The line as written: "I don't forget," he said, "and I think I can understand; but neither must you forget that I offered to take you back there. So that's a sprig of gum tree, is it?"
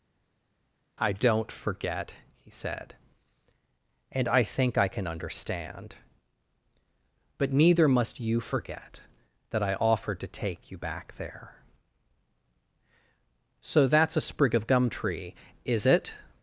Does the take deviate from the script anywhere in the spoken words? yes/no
no